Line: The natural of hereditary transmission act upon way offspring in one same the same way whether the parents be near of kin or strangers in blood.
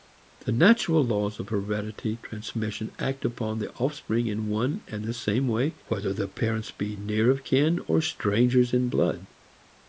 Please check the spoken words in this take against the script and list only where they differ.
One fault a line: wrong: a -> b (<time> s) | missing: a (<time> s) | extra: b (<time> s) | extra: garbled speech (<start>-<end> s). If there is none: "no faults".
extra: laws (1.0 s)
wrong: way -> the (3.6 s)
wrong: same -> and (4.9 s)